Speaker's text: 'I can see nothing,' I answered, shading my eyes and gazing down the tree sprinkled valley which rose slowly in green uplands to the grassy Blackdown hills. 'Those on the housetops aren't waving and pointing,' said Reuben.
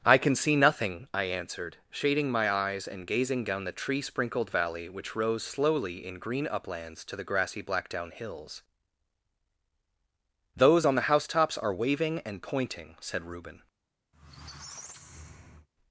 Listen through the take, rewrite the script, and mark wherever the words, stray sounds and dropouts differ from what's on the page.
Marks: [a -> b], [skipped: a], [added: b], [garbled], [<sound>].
'I can see nothing,' I answered, shading my eyes and gazing down the tree sprinkled valley which rose slowly in green uplands to the grassy Blackdown hills. 'Those on the housetops [aren't -> are] waving and pointing,' said Reuben. [squeak]